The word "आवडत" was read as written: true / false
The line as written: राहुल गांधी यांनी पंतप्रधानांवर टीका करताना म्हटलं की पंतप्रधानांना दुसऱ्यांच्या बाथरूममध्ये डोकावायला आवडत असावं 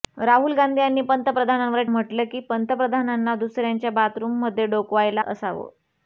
false